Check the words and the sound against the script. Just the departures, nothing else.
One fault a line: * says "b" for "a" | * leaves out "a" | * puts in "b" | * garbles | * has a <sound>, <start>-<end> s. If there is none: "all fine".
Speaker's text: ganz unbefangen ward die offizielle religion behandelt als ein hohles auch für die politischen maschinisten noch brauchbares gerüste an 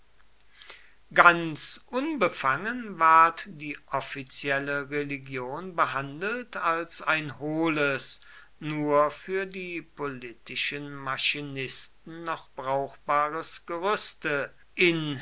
* says "nur" for "auch"
* says "in" for "an"